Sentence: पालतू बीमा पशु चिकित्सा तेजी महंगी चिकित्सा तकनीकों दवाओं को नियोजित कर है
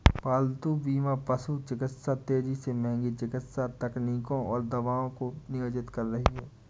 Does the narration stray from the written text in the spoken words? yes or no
yes